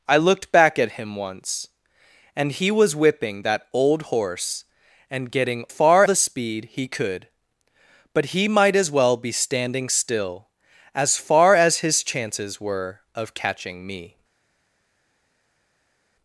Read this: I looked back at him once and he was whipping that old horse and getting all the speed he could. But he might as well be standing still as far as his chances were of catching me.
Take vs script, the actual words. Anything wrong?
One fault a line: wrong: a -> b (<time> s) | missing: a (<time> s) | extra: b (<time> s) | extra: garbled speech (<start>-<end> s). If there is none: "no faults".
wrong: all -> far (5.7 s)